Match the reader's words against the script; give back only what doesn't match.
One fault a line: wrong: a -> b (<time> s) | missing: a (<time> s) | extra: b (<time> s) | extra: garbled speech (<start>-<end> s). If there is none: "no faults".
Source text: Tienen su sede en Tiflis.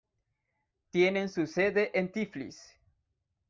no faults